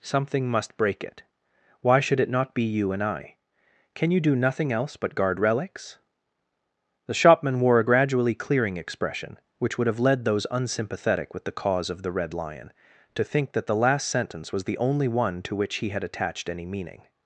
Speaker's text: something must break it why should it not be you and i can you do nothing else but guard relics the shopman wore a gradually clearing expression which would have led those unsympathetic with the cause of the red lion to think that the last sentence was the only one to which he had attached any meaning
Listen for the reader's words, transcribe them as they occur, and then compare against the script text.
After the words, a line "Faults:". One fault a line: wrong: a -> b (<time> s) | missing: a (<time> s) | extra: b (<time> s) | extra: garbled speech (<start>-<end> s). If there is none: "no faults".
something must break it why should it not be you and i can you do nothing else but guard relics the shopman wore a gradually clearing expression which would have led those unsympathetic with the cause of the red lion to think that the last sentence was the only one to which he had attached any meaning
Faults:
no faults